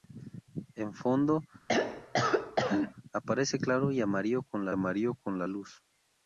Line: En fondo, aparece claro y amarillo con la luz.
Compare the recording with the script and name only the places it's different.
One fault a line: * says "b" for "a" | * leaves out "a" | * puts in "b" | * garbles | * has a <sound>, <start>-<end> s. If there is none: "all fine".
* has a throat clearing, 1.7-2.9 s
* puts in "amarillo con la"